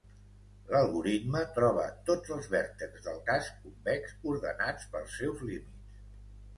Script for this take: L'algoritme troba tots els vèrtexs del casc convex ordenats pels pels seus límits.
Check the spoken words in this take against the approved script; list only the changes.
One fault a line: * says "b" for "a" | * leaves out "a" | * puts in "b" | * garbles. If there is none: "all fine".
* leaves out "pels"